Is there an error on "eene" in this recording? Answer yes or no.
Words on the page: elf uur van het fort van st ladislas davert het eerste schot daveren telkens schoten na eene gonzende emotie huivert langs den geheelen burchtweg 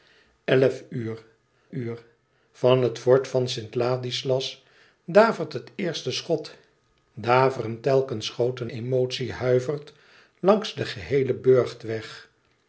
yes